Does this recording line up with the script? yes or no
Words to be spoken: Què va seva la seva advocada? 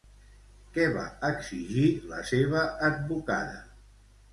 no